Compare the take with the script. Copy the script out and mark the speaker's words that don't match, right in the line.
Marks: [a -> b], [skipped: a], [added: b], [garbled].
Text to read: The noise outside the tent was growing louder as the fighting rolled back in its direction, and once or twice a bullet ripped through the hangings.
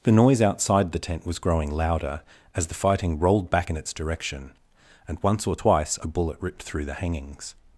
The noise outside the tent was growing louder as the fighting rolled back in its direction, and once or twice a bullet ripped through the hangings.